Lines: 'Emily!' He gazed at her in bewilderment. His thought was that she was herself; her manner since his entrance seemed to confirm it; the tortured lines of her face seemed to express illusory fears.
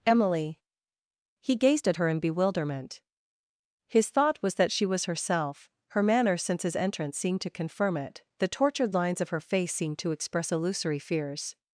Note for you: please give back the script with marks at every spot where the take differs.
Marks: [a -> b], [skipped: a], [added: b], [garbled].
'Emily!' He gazed at her in bewilderment. His thought was that she was herself; her manner since his entrance seemed to confirm it; the tortured lines of her face seemed to express illusory fears.